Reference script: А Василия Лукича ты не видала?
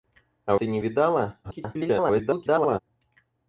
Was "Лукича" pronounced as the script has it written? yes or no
no